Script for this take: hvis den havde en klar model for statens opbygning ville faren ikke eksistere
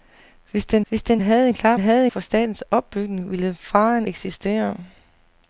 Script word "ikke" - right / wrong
wrong